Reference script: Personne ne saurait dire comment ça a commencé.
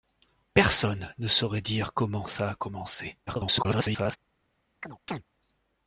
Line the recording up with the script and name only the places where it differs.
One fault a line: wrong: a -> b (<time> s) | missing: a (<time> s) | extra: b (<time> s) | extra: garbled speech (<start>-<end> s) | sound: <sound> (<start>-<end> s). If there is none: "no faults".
extra: garbled speech (3.3-4.2 s)
sound: chirp (4.8-5.2 s)